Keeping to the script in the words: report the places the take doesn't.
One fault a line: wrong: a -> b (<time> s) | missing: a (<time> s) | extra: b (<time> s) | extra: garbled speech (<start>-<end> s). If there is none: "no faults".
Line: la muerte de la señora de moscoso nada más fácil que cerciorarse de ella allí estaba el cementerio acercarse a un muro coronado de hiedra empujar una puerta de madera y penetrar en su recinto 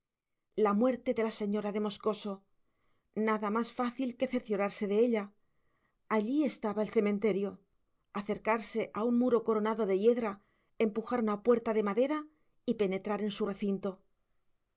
no faults